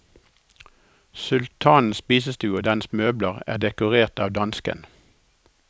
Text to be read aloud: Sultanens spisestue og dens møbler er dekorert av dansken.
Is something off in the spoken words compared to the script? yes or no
no